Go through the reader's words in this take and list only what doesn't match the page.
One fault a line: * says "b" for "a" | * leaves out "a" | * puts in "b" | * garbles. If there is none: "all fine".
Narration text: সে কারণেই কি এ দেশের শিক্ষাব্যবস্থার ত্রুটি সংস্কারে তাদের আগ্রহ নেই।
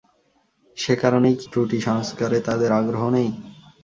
* leaves out "এ দেশের শিক্ষাব্যবস্থার"